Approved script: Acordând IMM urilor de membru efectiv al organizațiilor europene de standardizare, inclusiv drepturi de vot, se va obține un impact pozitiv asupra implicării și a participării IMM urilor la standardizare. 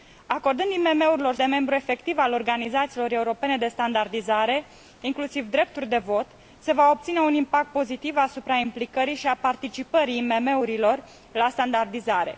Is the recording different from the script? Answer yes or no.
no